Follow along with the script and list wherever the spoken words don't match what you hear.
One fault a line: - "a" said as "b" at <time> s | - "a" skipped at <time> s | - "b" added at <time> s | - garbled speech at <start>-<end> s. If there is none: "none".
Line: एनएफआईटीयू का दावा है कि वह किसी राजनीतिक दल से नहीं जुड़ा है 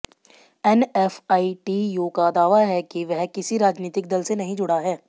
none